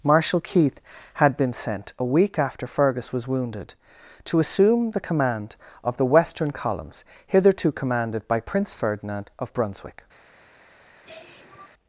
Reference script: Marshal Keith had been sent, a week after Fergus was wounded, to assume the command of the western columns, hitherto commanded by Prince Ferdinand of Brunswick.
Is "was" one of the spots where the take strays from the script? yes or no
no